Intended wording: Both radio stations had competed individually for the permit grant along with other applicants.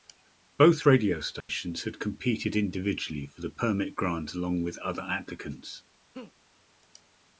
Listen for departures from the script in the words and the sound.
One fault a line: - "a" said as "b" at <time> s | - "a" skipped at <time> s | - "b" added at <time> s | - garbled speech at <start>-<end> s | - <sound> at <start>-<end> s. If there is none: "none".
- dropout at 1.4-1.5 s
- laugh at 6.1-6.3 s